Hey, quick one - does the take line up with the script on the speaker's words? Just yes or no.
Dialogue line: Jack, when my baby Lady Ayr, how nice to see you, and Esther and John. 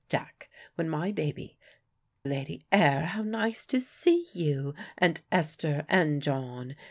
yes